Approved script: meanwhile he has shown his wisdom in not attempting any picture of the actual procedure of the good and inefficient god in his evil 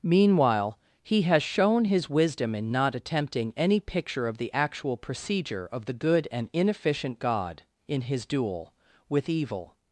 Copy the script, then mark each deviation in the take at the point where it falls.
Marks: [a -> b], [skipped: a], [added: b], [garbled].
meanwhile he has shown his wisdom in not attempting any picture of the actual procedure of the good and inefficient god in his [added: duel with] evil